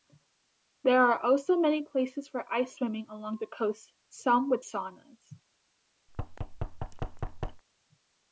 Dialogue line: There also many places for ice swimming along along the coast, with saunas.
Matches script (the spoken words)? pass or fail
fail